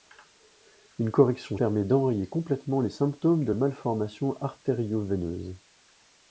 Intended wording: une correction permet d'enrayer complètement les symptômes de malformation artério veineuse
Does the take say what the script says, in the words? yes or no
yes